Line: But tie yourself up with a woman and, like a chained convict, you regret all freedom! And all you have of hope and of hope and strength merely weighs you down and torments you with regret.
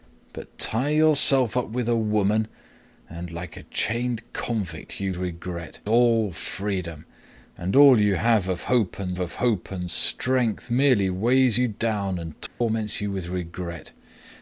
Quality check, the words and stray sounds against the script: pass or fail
fail